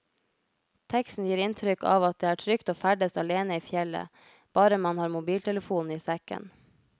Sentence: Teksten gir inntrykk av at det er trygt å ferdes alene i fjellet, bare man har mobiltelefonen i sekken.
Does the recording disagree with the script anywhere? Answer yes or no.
no